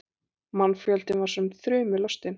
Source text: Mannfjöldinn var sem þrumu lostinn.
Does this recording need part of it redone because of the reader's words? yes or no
no